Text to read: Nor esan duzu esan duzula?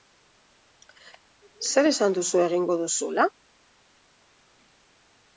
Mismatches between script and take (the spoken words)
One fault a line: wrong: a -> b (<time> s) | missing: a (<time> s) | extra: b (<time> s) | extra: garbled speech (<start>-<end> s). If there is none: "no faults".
wrong: Nor -> Zer (1.7 s)
wrong: esan -> egingo (2.4 s)